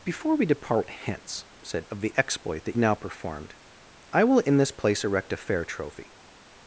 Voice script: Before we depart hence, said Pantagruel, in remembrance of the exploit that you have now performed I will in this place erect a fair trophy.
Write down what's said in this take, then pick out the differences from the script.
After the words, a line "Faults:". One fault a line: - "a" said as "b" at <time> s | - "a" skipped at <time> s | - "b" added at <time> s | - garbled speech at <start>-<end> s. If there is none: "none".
Before we depart hence, said Of the exploit that now performed I will in this place erect a fair trophy.
Faults:
- "Pantagruel in remembrance" skipped at 1.9 s
- "you have" skipped at 2.8 s